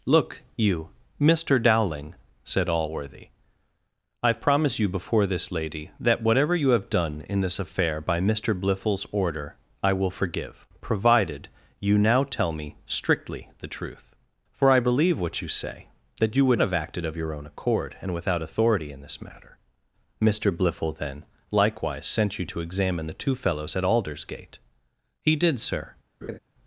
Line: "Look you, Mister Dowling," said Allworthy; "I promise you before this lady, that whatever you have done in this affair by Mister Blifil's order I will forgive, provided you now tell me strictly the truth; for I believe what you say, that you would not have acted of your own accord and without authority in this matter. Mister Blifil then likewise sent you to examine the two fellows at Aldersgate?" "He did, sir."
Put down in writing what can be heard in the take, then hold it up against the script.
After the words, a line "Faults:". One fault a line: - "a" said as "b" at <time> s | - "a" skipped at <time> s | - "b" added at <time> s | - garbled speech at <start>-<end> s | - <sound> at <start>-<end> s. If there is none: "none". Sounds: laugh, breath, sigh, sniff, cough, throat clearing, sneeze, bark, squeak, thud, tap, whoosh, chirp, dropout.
"Look you, Mister Dowling," said Allworthy; "I promise you before this lady, that whatever you have done in this affair by Mister Blifil's order I will forgive, provided you now tell me strictly the truth; for I believe what you say, that you would have acted of your own accord and without authority in this matter. Mister Blifil then likewise sent you to examine the two fellows at Aldersgate?" "He did, sir."
Faults:
- "not" skipped at 16.6 s
- laugh at 26.2-26.4 s